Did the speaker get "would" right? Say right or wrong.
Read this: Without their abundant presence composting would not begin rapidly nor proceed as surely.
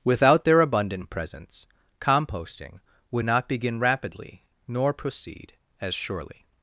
right